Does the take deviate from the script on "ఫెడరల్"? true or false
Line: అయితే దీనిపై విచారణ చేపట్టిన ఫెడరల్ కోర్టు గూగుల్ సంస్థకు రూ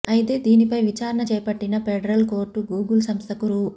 false